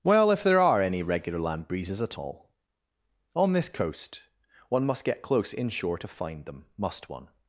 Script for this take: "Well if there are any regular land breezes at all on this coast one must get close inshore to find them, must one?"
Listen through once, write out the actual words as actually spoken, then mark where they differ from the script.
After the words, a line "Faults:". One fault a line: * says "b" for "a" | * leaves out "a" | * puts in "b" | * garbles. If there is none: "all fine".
"Well if there are any regular land breezes at all on this coast one must get close inshore to find them, must one?"
Faults:
all fine